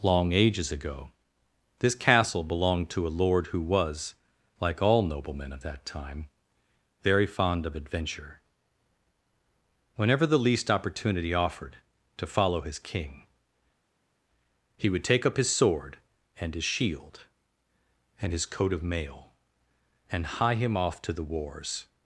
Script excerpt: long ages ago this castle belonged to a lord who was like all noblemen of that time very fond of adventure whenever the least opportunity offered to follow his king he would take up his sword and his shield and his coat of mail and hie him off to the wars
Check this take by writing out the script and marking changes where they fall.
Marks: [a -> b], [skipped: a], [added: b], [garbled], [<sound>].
long ages ago this castle belonged to a lord who was like all noblemen of that time very fond of adventure whenever the least opportunity offered to follow his king he would take up his sword and his shield and his coat of mail and hie him off to the wars